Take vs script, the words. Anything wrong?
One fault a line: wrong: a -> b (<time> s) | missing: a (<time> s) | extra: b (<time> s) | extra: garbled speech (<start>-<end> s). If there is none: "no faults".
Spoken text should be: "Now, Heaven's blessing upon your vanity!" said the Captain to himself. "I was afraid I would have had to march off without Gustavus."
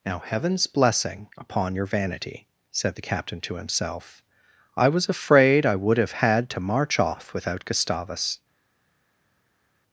no faults